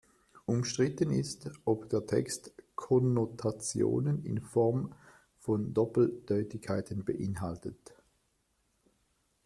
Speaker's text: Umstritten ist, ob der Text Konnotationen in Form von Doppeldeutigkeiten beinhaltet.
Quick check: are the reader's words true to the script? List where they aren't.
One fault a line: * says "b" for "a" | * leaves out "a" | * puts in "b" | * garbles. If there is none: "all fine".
all fine